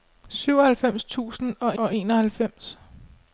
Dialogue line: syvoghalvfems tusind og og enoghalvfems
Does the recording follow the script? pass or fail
pass